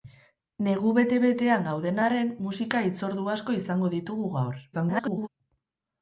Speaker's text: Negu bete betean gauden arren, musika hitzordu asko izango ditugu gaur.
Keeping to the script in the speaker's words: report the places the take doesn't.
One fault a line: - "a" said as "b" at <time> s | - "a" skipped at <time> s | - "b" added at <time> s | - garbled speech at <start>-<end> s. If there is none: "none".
- garbled speech at 4.7-5.3 s